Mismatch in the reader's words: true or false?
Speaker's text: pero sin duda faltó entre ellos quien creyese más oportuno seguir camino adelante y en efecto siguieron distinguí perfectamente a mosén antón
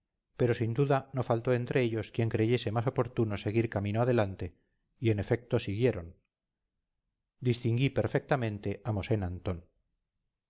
true